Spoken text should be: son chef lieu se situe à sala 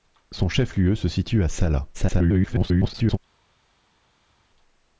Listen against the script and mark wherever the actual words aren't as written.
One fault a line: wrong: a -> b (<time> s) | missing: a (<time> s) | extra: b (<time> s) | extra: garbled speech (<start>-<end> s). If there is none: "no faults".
extra: garbled speech (1.9-3.2 s)